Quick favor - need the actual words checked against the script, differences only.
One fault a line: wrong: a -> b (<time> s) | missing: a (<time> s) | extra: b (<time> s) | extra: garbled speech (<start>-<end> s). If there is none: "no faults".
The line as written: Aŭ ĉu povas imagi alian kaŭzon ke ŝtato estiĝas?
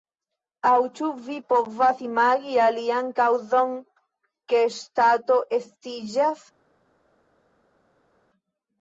extra: vi (1.2 s)